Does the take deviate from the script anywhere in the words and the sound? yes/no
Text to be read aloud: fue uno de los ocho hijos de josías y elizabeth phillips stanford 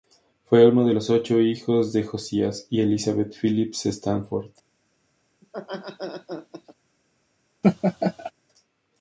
yes